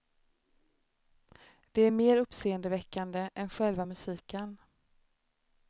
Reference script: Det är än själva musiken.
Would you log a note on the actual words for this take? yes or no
yes